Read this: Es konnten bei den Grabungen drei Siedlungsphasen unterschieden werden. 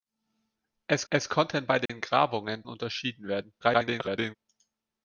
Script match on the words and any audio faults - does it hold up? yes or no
no